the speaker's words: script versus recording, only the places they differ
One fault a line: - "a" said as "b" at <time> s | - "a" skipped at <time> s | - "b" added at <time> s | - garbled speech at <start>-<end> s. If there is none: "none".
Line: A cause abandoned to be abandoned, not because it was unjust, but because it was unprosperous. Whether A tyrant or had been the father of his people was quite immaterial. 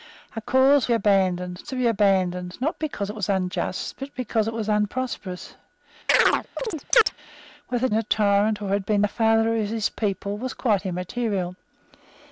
none